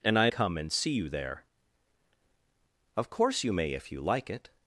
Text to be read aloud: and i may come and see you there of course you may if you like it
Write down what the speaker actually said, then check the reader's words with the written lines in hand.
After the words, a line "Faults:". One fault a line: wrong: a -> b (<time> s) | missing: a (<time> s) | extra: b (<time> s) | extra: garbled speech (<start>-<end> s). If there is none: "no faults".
and i come and see you there of course you may if you like it
Faults:
missing: may (0.3 s)